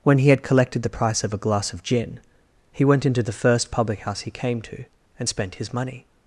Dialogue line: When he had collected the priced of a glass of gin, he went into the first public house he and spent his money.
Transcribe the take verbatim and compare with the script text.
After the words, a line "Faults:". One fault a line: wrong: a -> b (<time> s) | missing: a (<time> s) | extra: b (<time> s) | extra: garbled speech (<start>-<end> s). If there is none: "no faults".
When he had collected the price of a glass of gin, he went into the first public house he came to, and spent his money.
Faults:
wrong: priced -> price (0.9 s)
extra: came to (4.3 s)